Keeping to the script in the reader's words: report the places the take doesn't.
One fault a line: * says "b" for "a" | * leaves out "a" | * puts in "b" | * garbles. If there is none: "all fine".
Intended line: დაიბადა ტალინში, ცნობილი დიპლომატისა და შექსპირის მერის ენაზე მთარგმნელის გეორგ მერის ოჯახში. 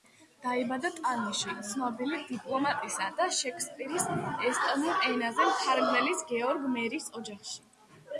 * says "ესტონურ" for "მერის"